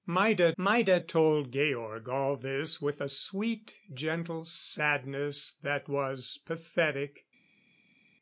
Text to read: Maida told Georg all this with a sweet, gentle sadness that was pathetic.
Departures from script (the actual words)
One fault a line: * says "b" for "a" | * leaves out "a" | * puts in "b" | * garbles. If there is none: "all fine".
* puts in "maida"